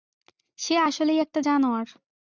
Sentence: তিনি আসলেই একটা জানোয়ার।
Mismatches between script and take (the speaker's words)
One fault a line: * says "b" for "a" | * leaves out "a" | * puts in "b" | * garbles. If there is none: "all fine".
* says "সে" for "তিনি"